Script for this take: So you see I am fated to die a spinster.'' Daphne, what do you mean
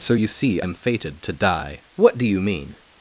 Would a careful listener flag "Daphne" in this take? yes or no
yes